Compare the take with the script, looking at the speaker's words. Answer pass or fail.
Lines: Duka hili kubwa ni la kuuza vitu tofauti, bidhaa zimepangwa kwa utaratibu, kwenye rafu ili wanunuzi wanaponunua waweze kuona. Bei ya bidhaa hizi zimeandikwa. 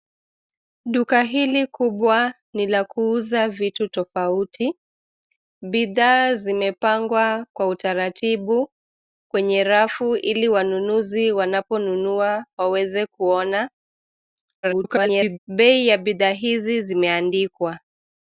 fail